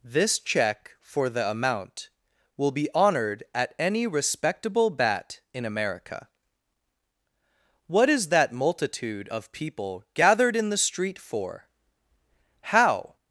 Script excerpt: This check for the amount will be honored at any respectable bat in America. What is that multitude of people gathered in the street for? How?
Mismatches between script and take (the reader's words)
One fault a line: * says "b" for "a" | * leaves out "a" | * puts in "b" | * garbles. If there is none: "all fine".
all fine